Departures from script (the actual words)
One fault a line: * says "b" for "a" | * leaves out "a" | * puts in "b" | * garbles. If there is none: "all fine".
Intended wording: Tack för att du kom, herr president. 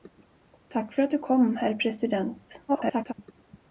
* garbles